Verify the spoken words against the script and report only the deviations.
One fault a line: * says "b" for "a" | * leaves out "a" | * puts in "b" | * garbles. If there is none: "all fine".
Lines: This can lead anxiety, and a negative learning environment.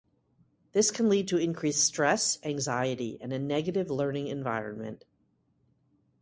* puts in "to increased stress"